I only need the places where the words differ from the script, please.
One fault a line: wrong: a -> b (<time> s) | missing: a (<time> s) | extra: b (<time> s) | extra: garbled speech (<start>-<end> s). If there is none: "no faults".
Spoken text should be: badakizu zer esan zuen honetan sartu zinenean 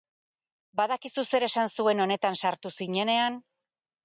no faults